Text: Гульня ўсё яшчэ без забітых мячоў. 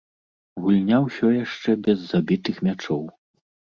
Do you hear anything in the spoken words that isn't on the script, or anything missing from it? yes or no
no